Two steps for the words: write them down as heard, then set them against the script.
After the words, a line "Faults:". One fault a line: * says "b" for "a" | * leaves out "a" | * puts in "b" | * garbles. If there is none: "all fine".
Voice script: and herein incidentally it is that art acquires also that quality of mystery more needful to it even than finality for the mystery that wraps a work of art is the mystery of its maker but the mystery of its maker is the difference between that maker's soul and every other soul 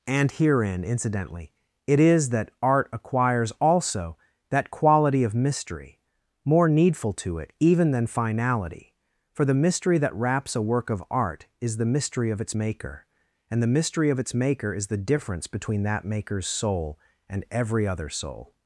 and herein incidentally it is that art acquires also that quality of mystery more needful to it even than finality for the mystery that wraps a work of art is the mystery of its maker and the mystery of its maker is the difference between that maker's soul and every other soul
Faults:
* says "and" for "but"